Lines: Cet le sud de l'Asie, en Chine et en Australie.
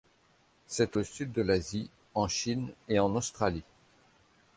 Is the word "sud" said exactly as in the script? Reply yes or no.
yes